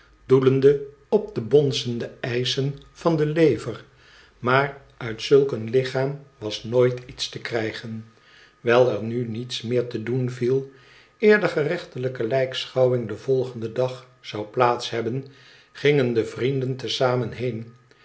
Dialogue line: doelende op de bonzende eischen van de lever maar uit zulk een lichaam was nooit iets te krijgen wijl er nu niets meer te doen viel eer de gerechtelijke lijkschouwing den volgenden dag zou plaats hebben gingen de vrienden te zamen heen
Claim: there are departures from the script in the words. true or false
false